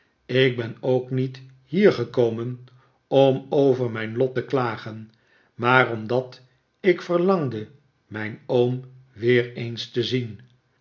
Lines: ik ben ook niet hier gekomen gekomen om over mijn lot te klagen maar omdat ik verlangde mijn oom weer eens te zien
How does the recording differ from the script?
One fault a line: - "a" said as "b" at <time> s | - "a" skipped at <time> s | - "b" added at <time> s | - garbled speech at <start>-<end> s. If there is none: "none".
- "gekomen" skipped at 2.6 s